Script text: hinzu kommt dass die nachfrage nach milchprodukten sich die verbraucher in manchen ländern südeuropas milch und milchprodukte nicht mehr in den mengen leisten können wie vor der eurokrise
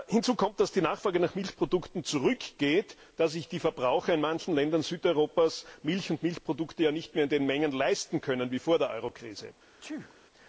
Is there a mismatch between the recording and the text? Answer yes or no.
yes